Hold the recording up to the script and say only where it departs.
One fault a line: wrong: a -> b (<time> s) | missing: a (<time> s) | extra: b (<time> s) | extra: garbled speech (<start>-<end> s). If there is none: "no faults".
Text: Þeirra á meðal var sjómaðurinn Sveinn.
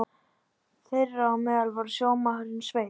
no faults